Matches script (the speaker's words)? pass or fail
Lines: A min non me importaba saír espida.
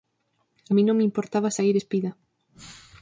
pass